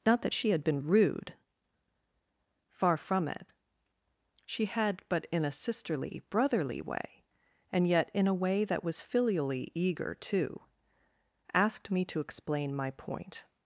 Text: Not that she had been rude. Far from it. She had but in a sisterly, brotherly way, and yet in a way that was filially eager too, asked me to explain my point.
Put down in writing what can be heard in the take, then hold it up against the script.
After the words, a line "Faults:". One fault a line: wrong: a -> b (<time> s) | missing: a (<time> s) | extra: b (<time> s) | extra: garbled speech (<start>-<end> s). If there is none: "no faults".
Not that she had been rude. Far from it. She had but in a sisterly, brotherly way, and yet in a way that was filially eager too, asked me to explain my point.
Faults:
no faults